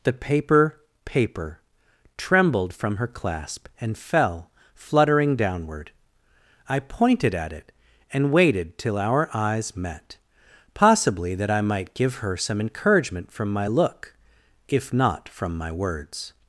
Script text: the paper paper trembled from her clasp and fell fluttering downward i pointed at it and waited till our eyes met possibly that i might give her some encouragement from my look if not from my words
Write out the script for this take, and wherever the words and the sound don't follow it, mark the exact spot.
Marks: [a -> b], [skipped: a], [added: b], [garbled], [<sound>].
the paper paper trembled from her clasp and fell fluttering downward i pointed at it and waited till our eyes met possibly that i might give her some encouragement from my look if not from my words